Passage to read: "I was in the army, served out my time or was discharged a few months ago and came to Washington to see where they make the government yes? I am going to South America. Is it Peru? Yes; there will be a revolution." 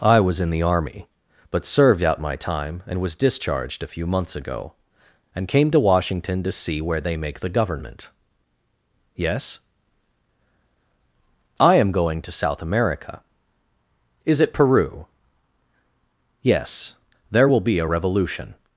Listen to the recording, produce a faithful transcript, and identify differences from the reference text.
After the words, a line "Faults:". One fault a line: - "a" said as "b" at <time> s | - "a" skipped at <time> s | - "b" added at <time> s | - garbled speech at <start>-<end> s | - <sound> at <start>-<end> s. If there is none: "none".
"I was in the army, but served out my time and was discharged a few months ago and came to Washington to see where they make the government yes? I am going to South America. Is it Peru? Yes; there will be a revolution."
Faults:
- "but" added at 1.5 s
- "or" said as "and" at 2.9 s